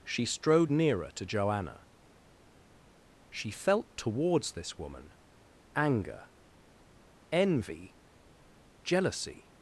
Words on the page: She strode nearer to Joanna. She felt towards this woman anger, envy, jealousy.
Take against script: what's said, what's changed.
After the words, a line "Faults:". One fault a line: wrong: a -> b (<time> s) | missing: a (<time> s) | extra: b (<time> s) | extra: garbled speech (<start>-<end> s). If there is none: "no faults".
She strode nearer to Joanna. She felt towards this woman anger, envy, jealousy.
Faults:
no faults